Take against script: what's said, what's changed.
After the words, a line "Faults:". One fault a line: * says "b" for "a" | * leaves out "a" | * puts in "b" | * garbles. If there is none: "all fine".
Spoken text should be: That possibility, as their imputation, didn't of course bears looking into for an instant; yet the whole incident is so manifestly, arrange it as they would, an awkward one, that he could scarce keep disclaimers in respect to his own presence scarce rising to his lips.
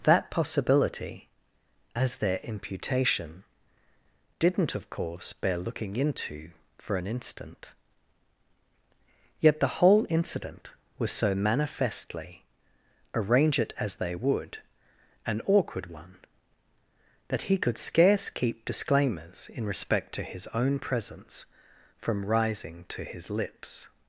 That possibility, as their imputation, didn't of course bear looking into for an instant; yet the whole incident was so manifestly, arrange it as they would, an awkward one, that he could scarce keep disclaimers in respect to his own presence from rising to his lips.
Faults:
* says "bear" for "bears"
* says "was" for "is"
* says "from" for "scarce"